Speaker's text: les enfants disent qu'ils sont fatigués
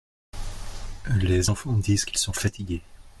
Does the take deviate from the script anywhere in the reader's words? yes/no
no